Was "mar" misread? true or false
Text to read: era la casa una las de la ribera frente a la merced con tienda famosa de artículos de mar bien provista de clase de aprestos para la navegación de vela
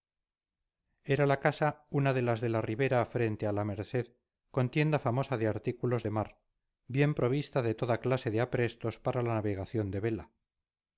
false